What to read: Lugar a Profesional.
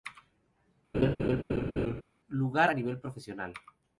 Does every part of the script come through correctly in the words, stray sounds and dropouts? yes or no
no